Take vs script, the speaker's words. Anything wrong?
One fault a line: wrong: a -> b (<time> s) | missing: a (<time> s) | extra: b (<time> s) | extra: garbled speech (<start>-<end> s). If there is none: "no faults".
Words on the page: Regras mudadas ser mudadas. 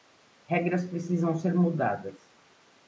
wrong: mudadas -> precisam (0.8 s)